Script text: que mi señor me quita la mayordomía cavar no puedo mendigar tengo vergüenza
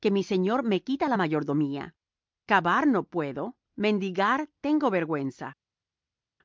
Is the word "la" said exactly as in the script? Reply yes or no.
yes